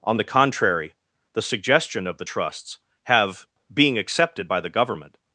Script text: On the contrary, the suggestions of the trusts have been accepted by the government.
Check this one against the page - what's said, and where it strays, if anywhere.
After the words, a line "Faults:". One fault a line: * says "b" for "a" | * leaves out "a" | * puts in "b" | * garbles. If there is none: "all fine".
On the contrary, the suggestion of the trusts have being accepted by the government.
Faults:
* says "suggestion" for "suggestions"
* says "being" for "been"